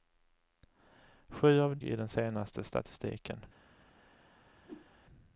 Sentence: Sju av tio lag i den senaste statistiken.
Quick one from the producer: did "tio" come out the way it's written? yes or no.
no